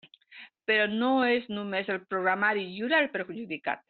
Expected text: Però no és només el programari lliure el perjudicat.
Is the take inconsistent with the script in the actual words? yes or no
no